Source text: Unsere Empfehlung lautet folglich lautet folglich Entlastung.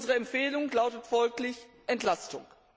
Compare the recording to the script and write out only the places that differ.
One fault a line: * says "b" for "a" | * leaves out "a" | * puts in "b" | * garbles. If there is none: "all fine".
* leaves out "lautet folglich"